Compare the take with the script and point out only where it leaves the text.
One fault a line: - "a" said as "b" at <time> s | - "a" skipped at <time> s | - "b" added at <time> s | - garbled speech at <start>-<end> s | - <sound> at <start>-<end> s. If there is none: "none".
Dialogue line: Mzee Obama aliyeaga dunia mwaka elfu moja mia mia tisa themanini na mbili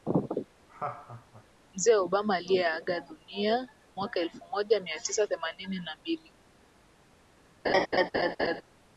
- laugh at 0.7-1.4 s
- "mia" skipped at 5.0 s
- laugh at 7.6-8.6 s